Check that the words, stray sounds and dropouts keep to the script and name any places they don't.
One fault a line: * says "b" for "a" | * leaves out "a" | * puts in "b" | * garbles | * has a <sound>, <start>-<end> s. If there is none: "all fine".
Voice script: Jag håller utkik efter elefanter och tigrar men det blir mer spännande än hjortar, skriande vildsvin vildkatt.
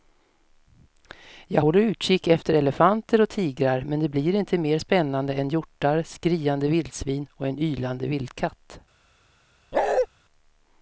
* puts in "inte"
* puts in "och en ylande"
* has a bark, 9.7-10.1 s